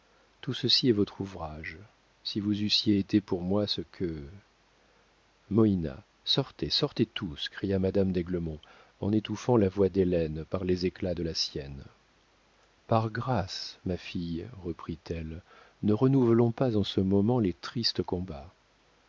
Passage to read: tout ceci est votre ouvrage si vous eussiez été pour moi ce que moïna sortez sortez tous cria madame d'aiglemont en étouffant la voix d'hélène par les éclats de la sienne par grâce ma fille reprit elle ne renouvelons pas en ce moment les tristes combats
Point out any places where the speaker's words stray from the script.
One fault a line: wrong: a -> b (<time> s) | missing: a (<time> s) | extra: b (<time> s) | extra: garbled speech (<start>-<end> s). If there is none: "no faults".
no faults